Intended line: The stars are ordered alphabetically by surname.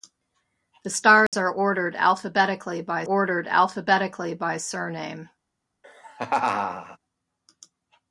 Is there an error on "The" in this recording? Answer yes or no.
no